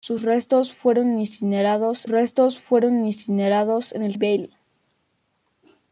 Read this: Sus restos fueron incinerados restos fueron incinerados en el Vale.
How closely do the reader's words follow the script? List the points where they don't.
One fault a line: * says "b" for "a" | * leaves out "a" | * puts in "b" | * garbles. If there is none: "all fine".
all fine